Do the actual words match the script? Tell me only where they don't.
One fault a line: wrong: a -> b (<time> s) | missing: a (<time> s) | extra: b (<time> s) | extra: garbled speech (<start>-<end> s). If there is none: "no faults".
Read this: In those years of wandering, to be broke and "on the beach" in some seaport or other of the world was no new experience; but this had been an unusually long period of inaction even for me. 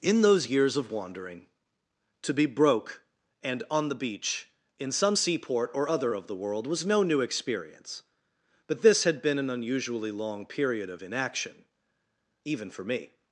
no faults